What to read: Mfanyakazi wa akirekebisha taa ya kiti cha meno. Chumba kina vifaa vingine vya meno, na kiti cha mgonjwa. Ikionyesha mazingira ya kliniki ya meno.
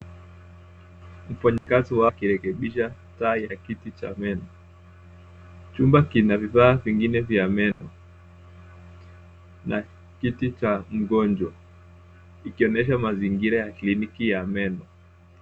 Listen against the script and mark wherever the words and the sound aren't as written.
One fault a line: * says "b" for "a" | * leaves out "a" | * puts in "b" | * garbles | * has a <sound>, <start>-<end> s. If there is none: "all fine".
* has a dropout, 1.6-1.7 s
* has a dropout, 7.7-7.8 s